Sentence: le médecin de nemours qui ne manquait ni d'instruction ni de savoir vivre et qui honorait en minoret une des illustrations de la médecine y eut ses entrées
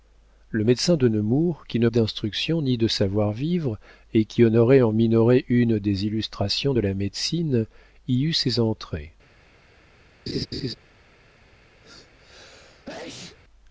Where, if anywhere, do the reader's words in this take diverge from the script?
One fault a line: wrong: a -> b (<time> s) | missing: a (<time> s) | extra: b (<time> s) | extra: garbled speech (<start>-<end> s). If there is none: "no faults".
missing: manquait ni (1.9 s)